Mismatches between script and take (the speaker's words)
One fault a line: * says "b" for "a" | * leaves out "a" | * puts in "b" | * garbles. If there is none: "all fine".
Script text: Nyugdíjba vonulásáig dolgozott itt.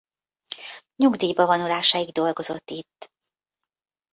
all fine